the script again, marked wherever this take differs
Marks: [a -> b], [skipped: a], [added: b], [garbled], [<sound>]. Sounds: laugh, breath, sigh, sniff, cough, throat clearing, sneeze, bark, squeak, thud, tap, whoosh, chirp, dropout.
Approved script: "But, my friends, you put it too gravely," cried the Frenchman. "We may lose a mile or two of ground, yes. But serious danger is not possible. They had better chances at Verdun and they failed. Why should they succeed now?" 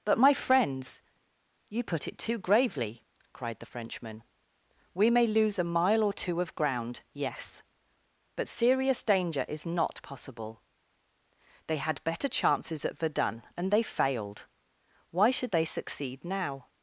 "But, my friends, you put it too gravely," cried the Frenchman. "We may lose a mile or two of ground, yes. But serious danger is not possible. They had better chances at Verdun and they failed. Why should they succeed now?"